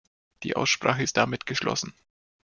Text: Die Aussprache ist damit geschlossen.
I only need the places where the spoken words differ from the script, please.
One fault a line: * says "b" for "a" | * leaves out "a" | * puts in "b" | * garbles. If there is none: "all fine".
all fine